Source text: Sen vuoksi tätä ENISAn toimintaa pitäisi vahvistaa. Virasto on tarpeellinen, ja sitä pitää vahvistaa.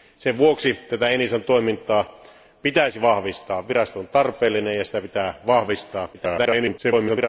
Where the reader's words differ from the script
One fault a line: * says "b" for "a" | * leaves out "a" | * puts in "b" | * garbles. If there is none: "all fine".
* garbles